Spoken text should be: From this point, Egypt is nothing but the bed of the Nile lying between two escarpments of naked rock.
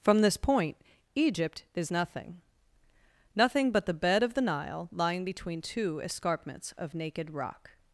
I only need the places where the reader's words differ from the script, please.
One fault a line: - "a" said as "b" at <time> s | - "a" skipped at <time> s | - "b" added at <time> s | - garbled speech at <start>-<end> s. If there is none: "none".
- "nothing" added at 3.4 s